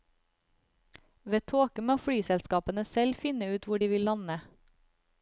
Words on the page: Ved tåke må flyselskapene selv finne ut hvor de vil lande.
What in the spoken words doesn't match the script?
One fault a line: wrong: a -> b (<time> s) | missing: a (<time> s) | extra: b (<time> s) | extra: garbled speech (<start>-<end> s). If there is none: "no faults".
no faults